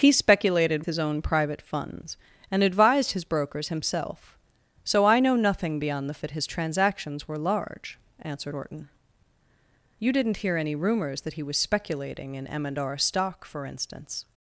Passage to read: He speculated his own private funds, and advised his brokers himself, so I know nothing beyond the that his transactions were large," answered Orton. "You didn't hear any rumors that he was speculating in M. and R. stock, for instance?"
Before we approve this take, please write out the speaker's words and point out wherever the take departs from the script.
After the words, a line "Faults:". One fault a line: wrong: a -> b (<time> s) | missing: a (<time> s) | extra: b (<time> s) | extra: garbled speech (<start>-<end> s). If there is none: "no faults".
He speculated his own private funds, and advised his brokers himself, so I know nothing beyond the that his transactions were large," answered Orton. "You didn't hear any rumors that he was speculating in M. and R. stock, for instance?"
Faults:
no faults